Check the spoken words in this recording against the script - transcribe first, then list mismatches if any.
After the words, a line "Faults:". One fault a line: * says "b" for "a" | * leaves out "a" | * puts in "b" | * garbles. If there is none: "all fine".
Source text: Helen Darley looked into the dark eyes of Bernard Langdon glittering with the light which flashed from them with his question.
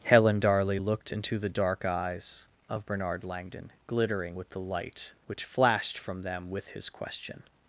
Helen Darley looked into the dark eyes of Bernard Langdon glittering with the light which flashed from them with his question.
Faults:
all fine